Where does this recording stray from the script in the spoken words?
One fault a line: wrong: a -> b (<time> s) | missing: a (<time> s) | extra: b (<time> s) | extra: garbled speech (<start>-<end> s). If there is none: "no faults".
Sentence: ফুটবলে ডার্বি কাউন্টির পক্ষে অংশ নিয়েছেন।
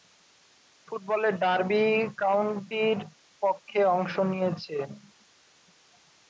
no faults